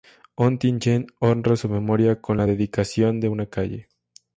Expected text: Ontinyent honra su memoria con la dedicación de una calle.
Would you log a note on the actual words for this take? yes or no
no